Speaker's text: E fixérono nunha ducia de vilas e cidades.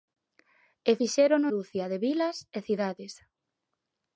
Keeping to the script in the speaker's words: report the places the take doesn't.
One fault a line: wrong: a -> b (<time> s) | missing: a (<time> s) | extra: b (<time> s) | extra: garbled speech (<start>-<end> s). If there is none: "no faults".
missing: nunha (1.5 s)